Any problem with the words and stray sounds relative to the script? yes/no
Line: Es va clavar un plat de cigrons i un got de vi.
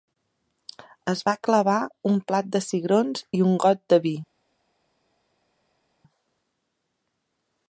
no